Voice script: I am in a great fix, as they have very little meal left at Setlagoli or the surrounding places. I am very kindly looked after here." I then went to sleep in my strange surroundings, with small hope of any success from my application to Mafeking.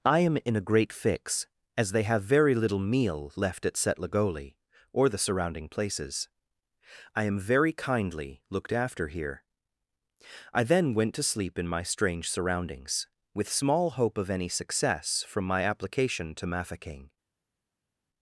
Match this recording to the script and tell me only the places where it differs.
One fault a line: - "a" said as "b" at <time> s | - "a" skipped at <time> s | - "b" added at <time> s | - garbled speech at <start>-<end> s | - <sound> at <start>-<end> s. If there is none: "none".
none